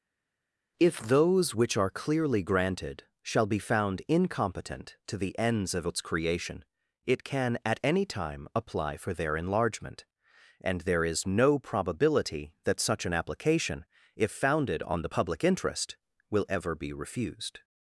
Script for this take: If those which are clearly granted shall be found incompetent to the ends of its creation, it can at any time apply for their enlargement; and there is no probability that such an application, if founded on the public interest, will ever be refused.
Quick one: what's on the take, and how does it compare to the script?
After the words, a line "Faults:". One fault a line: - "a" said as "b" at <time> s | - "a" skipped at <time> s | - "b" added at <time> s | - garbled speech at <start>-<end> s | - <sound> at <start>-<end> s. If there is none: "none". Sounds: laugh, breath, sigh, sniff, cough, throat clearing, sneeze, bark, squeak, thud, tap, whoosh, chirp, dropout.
If those which are clearly granted shall be found incompetent to the ends of its creation, it can at any time apply for their enlargement; and there is no probability that such an application, if founded on the public interest, will ever be refused.
Faults:
none